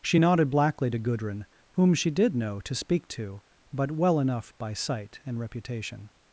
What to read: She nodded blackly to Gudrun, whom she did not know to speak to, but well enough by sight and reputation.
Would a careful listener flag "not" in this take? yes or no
yes